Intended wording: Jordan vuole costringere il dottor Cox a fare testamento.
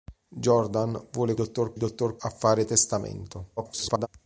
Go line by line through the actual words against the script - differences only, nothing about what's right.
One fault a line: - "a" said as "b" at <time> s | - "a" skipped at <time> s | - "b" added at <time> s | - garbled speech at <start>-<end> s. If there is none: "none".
- "costringere" said as "dottor" at 1.3 s
- "Cox" skipped at 2.2 s
- garbled speech at 3.6-4.1 s